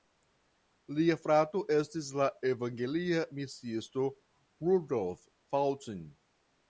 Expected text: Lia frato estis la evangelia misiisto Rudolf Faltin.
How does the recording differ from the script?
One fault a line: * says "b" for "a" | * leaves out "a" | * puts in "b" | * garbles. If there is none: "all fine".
all fine